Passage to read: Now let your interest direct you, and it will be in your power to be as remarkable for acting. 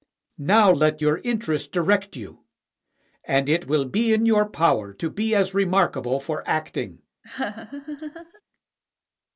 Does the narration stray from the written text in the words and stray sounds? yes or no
yes